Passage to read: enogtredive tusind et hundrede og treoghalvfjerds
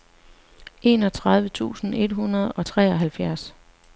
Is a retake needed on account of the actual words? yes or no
no